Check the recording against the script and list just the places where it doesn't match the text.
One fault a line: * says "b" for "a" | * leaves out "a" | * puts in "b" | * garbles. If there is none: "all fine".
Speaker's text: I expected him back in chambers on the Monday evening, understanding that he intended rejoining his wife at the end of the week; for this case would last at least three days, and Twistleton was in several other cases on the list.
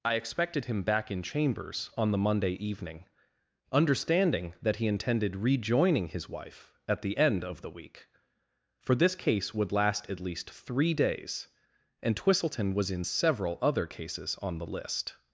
all fine